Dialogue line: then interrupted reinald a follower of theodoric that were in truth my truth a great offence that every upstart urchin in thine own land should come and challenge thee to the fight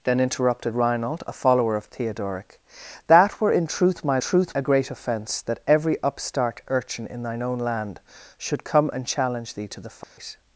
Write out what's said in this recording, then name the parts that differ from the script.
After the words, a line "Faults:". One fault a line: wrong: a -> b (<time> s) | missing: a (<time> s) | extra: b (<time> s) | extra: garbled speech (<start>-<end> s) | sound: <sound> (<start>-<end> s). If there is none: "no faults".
then interrupted reinald a follower of theodoric that were in truth my truth a great offence that every upstart urchin in thine own land should come and challenge thee to the fight
Faults:
sound: dropout (10.0-10.2 s)